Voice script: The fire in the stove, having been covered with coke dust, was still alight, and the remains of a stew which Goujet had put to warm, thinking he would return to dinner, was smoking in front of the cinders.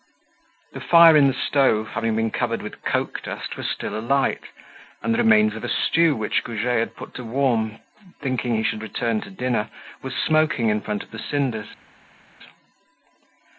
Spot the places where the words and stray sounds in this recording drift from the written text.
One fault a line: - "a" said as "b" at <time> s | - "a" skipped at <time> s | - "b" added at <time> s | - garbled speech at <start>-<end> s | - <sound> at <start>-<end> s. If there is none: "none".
- "would" said as "should" at 8.6 s